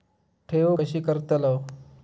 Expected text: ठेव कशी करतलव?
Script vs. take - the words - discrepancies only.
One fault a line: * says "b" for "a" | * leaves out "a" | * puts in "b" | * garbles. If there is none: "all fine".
all fine